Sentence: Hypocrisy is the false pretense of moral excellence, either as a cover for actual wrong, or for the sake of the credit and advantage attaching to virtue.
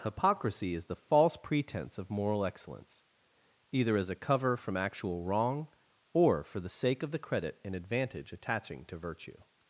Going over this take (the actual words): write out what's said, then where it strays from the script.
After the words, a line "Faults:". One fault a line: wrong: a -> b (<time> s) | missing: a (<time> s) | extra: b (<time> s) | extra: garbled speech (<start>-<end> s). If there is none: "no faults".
Hypocrisy is the false pretense of moral excellence, either as a cover from actual wrong, or for the sake of the credit and advantage attaching to virtue.
Faults:
wrong: for -> from (4.6 s)